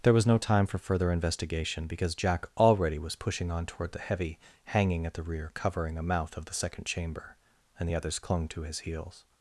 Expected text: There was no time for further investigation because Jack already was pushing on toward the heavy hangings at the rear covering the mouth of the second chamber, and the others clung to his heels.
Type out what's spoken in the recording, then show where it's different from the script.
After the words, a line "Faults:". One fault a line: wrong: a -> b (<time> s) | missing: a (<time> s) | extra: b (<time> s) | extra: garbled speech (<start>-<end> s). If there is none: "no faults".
There was no time for further investigation because Jack already was pushing on toward the heavy hanging at the rear covering a mouth of the second chamber, and the others clung to his heels.
Faults:
wrong: hangings -> hanging (4.7 s)
wrong: the -> a (6.0 s)